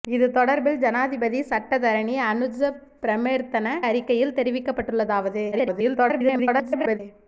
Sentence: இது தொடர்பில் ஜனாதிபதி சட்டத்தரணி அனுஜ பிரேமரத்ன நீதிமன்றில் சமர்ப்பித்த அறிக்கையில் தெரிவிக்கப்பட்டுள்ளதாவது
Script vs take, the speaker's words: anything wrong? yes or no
yes